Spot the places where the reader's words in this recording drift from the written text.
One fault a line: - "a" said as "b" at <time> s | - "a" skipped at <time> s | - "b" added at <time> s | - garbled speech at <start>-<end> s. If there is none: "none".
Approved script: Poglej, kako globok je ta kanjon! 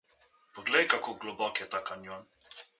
none